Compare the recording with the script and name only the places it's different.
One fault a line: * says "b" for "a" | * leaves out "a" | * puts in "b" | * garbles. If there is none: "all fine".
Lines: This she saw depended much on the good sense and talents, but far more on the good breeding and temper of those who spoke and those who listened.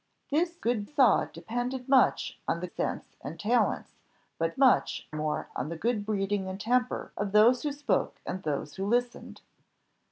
* says "good" for "she"
* leaves out "good"
* says "much" for "far"